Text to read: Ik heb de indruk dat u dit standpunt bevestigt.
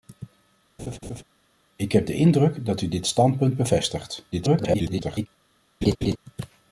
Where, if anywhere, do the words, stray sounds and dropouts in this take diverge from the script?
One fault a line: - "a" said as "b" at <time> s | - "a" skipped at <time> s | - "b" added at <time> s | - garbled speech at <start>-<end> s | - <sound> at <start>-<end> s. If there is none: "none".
- laugh at 0.8-1.2 s
- garbled speech at 4.3-5.3 s
- laugh at 5.8-6.2 s